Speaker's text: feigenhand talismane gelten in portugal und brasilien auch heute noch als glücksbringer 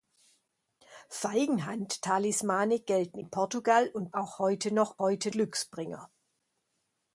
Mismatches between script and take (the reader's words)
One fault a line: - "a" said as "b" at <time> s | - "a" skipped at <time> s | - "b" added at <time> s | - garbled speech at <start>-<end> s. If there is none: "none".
- "brasilien" skipped at 4.2 s
- "als" said as "heute" at 5.0 s